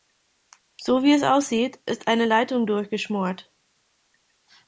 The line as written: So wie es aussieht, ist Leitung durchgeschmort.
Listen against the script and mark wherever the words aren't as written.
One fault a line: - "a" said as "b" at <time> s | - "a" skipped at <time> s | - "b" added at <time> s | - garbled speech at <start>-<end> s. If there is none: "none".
- "eine" added at 2.1 s